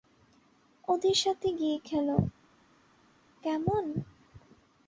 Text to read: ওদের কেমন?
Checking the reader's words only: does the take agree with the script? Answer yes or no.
no